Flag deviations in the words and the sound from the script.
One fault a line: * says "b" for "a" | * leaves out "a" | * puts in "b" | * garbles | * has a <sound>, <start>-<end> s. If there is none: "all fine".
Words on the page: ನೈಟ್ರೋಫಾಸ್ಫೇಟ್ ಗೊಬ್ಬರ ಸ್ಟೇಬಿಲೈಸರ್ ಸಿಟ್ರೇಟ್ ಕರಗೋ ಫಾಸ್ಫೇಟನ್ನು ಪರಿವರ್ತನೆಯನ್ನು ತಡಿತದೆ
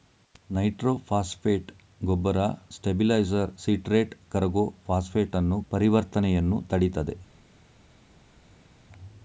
all fine